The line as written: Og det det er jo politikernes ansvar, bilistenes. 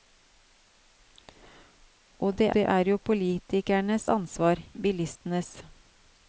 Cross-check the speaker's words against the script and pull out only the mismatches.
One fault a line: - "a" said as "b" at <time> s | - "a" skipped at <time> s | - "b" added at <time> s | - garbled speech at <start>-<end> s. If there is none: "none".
none